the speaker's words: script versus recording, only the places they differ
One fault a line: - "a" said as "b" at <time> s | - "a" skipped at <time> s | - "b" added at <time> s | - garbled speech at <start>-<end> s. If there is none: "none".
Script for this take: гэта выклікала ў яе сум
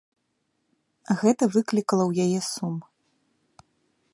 none